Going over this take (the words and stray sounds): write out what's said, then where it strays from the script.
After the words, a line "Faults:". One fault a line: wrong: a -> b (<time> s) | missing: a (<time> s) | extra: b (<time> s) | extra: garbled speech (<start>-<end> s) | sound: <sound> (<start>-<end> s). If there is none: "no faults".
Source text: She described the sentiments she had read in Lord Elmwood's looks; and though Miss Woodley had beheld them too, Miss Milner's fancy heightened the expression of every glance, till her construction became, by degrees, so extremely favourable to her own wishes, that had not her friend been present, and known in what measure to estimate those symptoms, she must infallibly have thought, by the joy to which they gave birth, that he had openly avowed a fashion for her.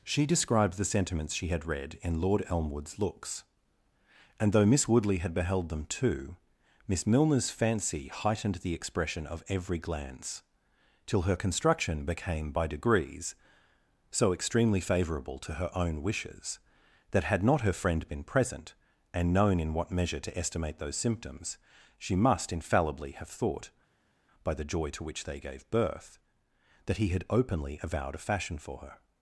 She described the sentiments she had read in Lord Elmwood's looks; and though Miss Woodley had beheld them too, Miss Milner's fancy heightened the expression of every glance, till her construction became, by degrees, so extremely favourable to her own wishes, that had not her friend been present, and known in what measure to estimate those symptoms, she must infallibly have thought, by the joy to which they gave birth, that he had openly avowed a fashion for her.
Faults:
no faults